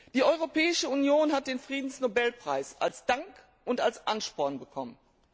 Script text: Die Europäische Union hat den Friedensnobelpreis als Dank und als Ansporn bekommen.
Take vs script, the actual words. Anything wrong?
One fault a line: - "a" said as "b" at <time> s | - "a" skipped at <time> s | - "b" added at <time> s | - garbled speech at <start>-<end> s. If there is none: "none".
none